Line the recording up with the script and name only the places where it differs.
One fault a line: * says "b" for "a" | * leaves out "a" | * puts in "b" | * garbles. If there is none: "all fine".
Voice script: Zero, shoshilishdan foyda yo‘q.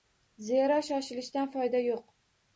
all fine